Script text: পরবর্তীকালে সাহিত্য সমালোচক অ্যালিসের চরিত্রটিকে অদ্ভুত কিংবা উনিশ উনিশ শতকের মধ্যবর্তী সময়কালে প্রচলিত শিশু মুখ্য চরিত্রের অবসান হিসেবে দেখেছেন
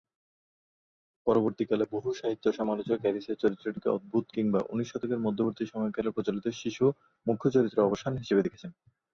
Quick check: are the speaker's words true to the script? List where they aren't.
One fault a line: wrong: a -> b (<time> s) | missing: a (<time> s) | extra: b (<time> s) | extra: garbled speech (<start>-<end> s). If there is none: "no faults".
extra: বহু (1.9 s)
missing: উনিশ (4.9 s)